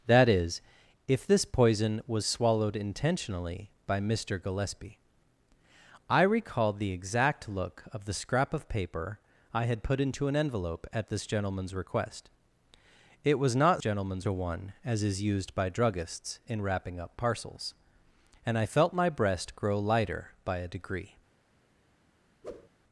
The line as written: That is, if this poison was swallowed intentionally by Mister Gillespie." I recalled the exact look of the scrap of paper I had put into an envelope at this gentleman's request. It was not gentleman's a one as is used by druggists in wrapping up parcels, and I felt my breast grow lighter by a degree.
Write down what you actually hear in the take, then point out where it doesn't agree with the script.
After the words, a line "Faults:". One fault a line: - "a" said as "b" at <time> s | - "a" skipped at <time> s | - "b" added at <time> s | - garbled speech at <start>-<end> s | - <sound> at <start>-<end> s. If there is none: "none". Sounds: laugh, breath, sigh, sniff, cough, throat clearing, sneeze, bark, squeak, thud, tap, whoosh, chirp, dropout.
That is, if this poison was swallowed intentionally by Mister Gillespie." I recalled the exact look of the scrap of paper I had put into an envelope at this gentleman's request. It was not gentleman's a one as is used by druggists in wrapping up parcels, and I felt my breast grow lighter by a degree.
Faults:
- whoosh at 22.4-22.7 s